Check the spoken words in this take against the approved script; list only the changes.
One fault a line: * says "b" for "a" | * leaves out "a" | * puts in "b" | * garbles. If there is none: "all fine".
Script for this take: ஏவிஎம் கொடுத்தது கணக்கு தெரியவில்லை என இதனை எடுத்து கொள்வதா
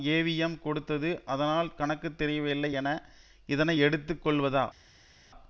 * puts in "அதனால்"